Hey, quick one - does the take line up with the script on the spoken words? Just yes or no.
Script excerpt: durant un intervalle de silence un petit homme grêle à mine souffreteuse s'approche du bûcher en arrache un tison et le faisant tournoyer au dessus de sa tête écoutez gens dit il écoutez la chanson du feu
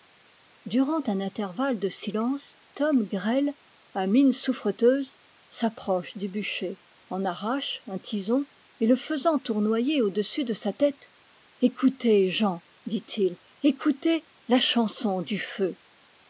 no